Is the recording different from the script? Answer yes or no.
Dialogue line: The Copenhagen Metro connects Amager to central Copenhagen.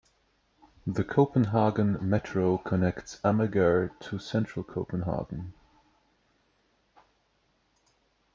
no